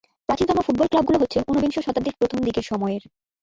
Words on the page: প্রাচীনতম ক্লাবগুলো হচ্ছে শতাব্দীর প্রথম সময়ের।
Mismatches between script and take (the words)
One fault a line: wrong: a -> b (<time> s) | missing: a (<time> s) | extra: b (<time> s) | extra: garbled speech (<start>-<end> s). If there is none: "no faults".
extra: ফুটবল (0.7 s)
extra: ঊনবিংশ (1.5 s)
extra: দিকের (2.5 s)